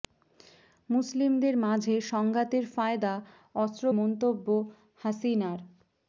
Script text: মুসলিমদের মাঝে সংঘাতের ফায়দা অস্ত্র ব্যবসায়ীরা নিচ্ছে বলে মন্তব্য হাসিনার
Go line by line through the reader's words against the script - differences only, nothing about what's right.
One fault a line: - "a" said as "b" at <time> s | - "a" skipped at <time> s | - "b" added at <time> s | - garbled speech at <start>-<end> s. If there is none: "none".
- "ব্যবসায়ীরা নিচ্ছে বলে" skipped at 3.8 s